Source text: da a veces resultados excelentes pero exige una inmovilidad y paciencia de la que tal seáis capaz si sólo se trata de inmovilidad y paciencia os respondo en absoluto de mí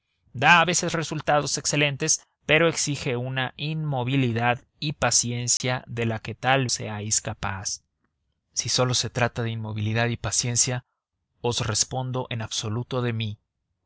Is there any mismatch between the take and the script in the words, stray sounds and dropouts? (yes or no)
yes